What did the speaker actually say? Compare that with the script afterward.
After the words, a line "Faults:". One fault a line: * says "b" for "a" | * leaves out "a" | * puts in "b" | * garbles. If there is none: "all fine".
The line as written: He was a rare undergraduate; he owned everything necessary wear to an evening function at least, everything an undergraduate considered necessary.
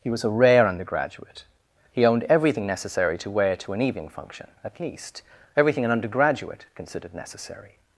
He was a rare undergraduate; he owned everything necessary to wear to an evening function at least, everything an undergraduate considered necessary.
Faults:
* puts in "to"